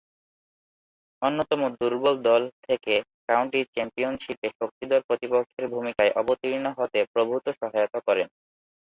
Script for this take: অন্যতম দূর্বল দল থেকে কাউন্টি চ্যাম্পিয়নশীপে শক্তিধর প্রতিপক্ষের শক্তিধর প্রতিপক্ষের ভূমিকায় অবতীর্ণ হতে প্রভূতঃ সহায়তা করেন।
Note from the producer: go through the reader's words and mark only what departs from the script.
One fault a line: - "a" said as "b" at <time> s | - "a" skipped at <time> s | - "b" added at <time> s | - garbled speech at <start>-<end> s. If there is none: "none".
- "শক্তিধর প্রতিপক্ষের" skipped at 5.7 s